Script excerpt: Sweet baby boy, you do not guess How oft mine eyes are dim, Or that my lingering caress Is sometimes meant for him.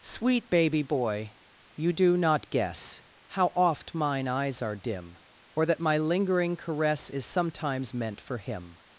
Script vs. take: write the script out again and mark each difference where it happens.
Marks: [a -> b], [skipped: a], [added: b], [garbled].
Sweet baby boy, you do not guess How oft mine eyes are dim, Or that my lingering caress Is sometimes meant for him.